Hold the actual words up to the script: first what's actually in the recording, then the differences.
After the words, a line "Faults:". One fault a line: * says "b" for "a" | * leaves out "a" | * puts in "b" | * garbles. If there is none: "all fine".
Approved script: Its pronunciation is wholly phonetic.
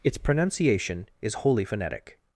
Its pronunciation is wholly phonetic.
Faults:
all fine